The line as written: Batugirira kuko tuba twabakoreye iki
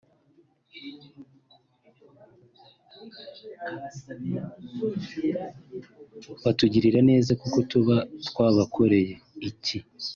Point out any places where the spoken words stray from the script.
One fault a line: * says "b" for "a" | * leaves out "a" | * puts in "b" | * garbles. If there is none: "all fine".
* puts in "neza"